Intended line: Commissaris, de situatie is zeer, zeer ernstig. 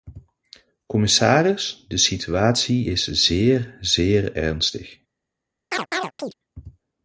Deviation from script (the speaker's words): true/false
false